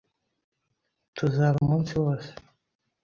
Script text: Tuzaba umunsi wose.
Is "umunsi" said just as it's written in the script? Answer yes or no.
yes